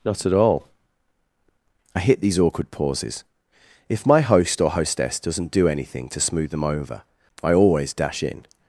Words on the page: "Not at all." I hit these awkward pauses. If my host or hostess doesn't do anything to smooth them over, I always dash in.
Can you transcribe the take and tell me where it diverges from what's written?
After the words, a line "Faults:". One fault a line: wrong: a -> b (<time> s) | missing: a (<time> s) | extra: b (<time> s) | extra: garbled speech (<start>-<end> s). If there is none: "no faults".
"Not at all." I hit these awkward pauses. If my host or hostess doesn't do anything to smooth them over, I always dash in.
Faults:
no faults